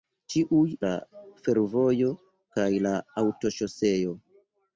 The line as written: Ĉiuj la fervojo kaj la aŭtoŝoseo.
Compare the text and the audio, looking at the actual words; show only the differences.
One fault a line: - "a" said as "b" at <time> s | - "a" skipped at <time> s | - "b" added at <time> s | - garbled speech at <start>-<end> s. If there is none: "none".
none